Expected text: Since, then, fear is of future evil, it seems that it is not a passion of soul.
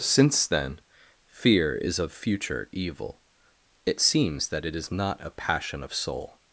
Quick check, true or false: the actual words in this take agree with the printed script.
true